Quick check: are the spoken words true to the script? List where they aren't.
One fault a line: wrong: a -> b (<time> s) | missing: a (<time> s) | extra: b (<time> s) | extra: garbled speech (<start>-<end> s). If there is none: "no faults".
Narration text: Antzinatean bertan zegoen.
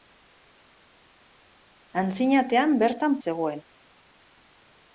no faults